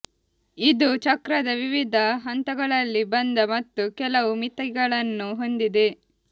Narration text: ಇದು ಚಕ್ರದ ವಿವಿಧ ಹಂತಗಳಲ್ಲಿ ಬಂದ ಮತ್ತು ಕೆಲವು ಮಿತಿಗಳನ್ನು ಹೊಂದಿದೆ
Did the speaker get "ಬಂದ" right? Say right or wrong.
right